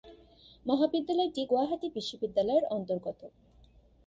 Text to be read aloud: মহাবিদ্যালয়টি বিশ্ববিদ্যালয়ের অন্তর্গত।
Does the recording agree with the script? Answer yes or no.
no